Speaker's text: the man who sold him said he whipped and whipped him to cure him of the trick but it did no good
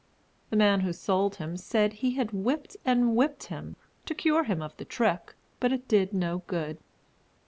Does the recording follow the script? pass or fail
fail